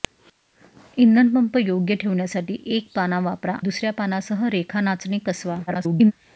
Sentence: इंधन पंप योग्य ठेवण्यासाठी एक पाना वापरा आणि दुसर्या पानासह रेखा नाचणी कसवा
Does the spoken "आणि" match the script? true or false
false